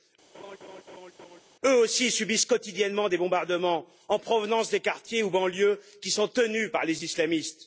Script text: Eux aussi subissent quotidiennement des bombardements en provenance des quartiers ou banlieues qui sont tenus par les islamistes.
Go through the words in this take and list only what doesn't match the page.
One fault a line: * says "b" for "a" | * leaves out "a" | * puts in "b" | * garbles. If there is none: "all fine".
all fine